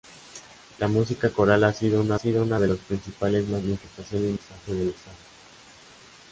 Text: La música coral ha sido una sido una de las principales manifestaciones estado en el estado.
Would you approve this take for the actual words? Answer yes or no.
yes